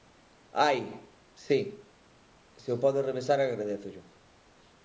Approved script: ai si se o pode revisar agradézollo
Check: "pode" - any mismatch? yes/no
no